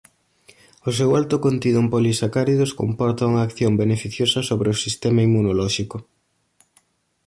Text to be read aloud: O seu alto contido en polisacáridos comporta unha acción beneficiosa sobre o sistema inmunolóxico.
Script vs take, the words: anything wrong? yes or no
no